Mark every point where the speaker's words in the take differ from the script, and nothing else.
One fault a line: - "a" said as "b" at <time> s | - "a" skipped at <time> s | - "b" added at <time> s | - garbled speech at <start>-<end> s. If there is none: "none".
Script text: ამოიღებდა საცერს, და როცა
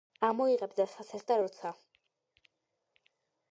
none